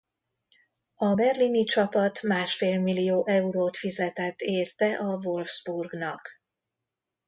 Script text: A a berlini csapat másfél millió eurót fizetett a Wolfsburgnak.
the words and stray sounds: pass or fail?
fail